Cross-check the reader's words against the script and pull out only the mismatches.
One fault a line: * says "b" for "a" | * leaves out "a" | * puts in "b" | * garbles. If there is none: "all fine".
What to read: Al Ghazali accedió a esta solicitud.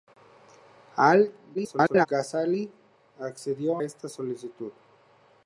* garbles
* leaves out "a"